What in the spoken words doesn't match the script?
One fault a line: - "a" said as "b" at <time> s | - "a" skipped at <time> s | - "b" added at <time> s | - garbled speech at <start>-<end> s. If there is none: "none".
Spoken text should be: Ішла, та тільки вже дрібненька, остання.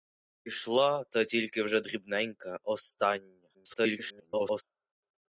- garbled speech at 3.5-4.6 s